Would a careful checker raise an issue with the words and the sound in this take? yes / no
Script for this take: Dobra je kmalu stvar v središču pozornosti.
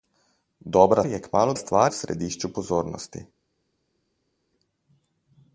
no